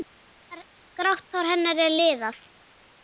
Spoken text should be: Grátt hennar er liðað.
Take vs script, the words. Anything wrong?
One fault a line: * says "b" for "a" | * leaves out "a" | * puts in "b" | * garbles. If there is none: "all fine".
* puts in "hár"